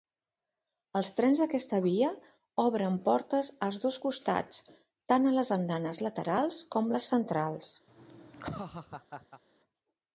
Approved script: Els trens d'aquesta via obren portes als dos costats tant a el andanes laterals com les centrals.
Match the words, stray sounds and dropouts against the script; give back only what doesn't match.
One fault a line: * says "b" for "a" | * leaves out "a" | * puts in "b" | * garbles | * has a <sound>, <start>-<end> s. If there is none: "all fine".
* says "les" for "el"
* has a laugh, 7.9-9.4 s